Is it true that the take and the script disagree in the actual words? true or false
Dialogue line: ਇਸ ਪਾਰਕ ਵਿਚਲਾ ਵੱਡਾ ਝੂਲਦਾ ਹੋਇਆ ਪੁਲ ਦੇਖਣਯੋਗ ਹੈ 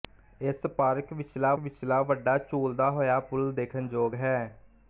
true